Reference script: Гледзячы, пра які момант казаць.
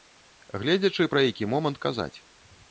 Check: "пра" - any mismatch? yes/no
no